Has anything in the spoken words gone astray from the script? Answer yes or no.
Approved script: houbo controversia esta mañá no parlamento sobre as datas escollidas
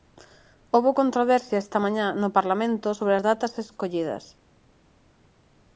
no